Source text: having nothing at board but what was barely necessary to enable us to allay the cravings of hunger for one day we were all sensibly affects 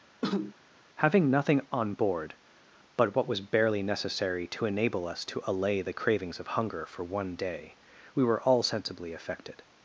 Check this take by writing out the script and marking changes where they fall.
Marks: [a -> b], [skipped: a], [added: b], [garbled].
having nothing [at -> on] board but what was barely necessary to enable us to allay the cravings of hunger for one day we were all sensibly [affects -> affected]